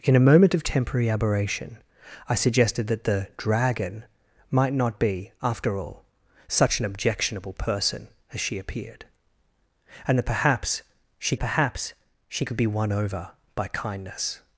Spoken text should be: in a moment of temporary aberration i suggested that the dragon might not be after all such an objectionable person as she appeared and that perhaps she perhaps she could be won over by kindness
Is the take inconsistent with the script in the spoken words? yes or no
no